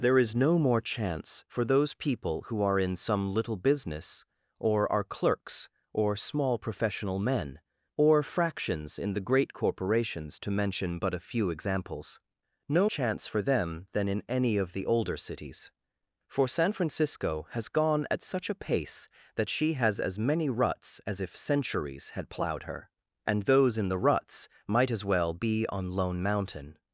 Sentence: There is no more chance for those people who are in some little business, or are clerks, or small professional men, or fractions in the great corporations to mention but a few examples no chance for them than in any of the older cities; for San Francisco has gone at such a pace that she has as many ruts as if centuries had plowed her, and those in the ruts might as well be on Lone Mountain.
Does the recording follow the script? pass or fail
pass